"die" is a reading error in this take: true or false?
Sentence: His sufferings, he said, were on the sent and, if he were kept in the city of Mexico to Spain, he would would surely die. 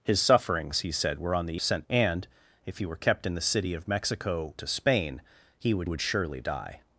false